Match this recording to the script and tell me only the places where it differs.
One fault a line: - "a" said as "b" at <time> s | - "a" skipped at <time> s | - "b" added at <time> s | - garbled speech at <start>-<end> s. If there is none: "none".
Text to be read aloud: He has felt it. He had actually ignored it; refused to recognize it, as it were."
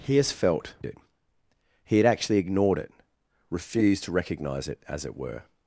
none